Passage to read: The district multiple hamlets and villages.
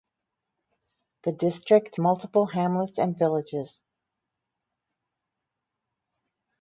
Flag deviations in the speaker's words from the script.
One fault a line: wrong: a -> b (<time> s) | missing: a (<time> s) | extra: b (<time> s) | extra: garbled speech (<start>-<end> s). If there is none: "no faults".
no faults